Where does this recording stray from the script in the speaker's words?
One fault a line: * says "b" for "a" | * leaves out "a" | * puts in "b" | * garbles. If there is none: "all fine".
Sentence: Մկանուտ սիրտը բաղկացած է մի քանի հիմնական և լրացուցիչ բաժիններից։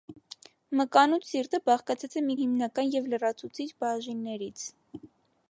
* leaves out "քանի"